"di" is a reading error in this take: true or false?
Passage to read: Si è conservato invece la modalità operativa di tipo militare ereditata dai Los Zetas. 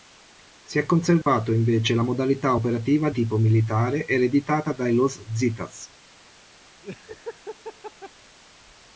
true